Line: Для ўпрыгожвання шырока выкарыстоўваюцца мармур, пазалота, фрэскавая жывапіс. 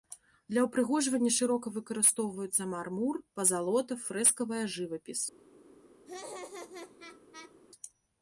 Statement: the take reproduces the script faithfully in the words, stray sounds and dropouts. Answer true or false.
false